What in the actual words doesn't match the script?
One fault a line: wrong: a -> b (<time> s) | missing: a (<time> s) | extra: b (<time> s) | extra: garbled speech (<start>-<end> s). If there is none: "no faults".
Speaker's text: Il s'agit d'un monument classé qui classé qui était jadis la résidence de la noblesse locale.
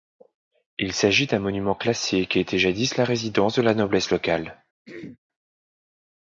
missing: classé qui (2.4 s)